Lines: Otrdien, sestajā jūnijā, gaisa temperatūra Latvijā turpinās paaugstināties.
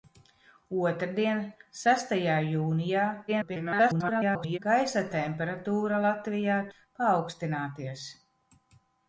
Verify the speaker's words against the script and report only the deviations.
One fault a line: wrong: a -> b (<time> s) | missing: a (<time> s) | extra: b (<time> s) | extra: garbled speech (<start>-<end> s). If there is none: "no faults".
extra: garbled speech (3.3-4.6 s)
missing: turpinās (6.6 s)